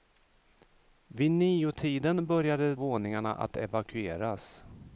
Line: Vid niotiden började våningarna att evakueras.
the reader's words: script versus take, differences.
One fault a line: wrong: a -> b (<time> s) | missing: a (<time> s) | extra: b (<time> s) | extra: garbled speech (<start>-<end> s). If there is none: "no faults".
no faults